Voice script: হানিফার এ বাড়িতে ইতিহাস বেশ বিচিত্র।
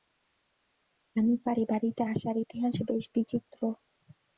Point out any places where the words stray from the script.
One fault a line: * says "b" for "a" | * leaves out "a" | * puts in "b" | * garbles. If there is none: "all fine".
* puts in "আসার"